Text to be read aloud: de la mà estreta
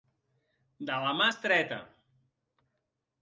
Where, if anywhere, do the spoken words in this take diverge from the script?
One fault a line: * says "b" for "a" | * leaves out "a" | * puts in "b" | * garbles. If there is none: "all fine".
all fine